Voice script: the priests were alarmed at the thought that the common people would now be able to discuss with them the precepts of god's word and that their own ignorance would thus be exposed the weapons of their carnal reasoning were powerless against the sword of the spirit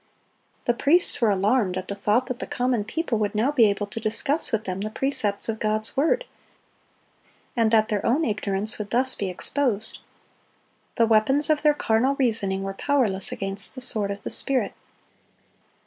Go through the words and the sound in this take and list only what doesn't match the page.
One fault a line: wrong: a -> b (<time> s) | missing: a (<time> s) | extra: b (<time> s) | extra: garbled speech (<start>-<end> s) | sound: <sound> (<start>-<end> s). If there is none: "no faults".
no faults